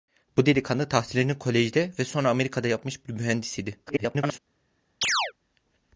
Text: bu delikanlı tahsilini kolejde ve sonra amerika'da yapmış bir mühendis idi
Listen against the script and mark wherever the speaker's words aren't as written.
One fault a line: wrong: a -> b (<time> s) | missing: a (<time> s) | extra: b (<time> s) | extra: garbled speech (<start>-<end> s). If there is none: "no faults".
extra: garbled speech (3.9-4.4 s)